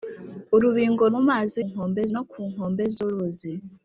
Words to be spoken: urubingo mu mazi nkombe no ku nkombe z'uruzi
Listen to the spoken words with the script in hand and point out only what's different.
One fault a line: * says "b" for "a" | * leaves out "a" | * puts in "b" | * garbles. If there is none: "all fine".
all fine